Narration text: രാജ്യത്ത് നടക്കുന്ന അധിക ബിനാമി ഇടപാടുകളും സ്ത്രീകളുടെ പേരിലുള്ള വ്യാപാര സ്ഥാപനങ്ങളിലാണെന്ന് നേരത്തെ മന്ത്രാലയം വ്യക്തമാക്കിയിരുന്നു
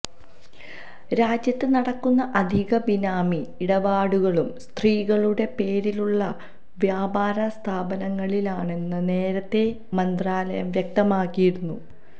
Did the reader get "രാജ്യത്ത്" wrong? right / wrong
right